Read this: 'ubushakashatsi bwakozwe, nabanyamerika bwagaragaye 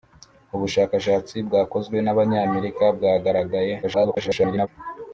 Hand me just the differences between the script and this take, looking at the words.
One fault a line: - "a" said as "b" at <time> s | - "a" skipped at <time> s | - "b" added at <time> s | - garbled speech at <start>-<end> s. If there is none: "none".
- garbled speech at 3.8-4.7 s